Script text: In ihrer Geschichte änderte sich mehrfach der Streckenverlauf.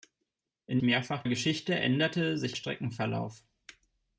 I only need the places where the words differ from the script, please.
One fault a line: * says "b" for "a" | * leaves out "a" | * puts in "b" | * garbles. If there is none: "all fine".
* says "mehrfach" for "ihrer"
* leaves out "mehrfach der"